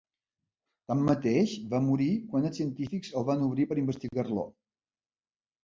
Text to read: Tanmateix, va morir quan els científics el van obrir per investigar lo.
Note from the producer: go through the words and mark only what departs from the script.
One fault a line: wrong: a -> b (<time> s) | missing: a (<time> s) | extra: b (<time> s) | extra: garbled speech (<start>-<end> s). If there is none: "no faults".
no faults